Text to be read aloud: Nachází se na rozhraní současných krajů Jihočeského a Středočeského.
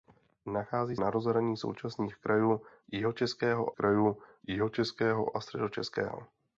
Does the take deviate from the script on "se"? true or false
true